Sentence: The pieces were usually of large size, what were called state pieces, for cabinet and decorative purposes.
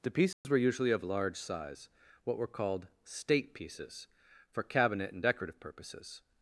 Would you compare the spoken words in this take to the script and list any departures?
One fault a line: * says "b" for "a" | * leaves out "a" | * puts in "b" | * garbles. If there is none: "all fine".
all fine